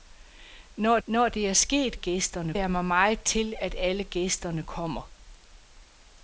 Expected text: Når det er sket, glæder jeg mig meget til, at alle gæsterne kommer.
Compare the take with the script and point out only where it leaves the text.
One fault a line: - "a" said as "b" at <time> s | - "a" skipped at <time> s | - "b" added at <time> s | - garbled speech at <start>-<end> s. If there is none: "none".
- "når" added at 1.1 s
- "glæder" said as "gæsterne" at 1.9 s